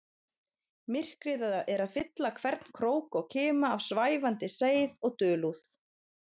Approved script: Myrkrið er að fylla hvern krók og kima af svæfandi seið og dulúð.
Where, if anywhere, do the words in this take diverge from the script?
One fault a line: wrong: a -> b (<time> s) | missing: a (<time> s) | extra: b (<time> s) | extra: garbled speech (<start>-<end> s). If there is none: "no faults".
no faults